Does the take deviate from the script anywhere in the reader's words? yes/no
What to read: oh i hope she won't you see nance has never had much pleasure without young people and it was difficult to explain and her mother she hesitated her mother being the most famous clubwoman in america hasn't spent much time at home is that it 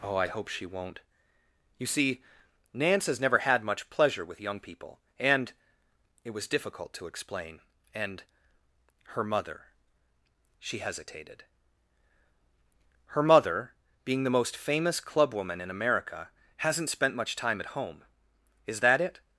yes